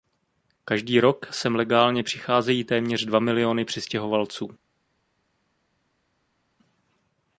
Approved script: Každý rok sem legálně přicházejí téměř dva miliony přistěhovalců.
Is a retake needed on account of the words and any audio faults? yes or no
no